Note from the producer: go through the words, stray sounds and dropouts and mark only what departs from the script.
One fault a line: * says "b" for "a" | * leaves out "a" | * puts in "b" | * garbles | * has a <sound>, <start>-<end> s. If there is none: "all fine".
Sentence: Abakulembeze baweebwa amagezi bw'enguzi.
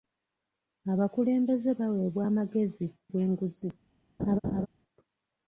* has a laugh, 4.2-4.7 s